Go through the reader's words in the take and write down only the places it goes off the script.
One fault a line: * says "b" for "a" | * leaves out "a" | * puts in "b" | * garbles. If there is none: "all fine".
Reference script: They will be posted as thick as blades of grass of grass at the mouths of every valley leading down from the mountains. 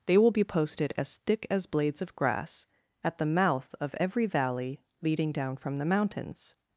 * leaves out "of grass"
* says "mouth" for "mouths"